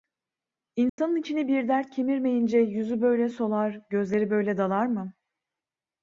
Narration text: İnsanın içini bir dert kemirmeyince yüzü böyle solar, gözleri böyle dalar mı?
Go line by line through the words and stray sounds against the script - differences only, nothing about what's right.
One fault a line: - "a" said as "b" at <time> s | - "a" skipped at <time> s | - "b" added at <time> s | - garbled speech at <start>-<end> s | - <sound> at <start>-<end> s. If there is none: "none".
- dropout at 0.9-1.0 s